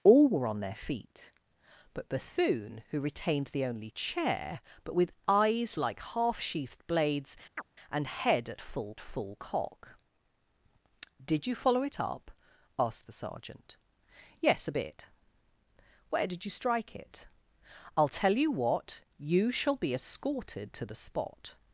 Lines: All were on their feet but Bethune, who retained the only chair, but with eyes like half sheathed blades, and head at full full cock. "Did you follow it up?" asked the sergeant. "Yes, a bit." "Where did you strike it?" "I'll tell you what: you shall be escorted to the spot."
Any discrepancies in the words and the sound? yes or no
yes